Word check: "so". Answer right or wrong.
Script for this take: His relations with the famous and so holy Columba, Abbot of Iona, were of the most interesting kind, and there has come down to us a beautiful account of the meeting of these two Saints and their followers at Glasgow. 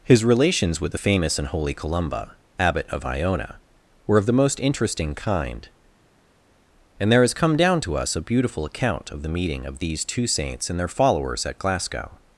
wrong